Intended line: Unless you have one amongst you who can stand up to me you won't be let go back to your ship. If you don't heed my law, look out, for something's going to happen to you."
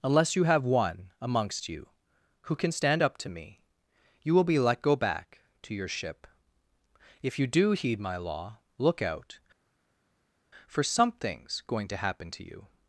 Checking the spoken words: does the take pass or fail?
fail